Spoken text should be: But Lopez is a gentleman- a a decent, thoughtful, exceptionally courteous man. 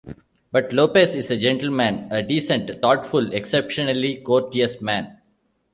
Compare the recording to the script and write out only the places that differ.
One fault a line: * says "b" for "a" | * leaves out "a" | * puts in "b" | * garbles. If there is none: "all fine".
* leaves out "a"